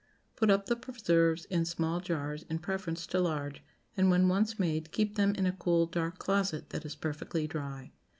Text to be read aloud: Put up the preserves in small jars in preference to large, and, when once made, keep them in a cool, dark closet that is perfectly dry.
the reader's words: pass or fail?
pass